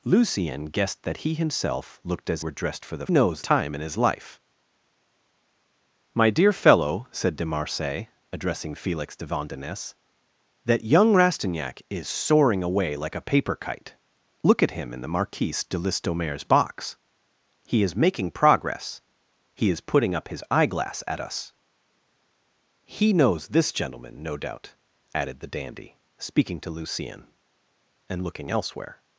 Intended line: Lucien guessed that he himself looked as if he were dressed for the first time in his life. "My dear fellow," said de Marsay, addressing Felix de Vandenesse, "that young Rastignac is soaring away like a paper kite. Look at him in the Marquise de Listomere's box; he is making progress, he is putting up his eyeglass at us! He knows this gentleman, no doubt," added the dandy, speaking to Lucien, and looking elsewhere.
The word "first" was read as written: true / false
false